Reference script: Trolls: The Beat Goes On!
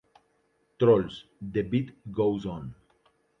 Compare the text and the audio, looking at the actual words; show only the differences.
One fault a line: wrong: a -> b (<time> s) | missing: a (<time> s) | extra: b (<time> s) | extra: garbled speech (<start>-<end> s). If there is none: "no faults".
no faults